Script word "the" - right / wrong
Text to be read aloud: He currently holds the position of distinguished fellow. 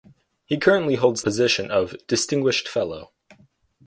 wrong